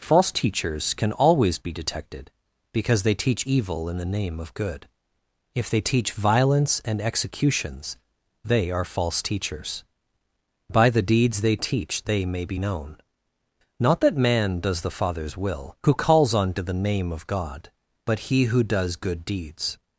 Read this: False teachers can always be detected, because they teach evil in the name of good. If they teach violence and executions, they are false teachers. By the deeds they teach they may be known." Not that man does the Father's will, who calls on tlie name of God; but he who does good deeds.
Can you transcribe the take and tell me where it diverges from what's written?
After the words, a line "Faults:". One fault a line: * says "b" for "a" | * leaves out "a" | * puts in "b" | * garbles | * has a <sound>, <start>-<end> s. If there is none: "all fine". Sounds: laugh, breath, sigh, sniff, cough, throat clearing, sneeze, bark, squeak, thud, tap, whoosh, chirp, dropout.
False teachers can always be detected, because they teach evil in the name of good. If they teach violence and executions, they are false teachers. By the deeds they teach they may be known." Not that man does the Father's will, who calls on to the name of God; but he who does good deeds.
Faults:
* says "to the" for "tlie"